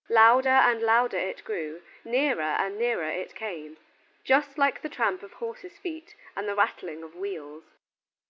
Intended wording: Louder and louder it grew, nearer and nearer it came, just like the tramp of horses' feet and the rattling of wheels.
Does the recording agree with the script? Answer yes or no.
yes